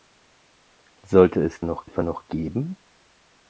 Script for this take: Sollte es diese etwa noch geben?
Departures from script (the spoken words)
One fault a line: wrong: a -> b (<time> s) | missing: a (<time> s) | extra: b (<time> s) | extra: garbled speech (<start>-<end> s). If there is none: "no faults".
wrong: diese -> noch (1.6 s)